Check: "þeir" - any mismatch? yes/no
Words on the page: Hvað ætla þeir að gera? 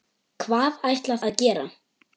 yes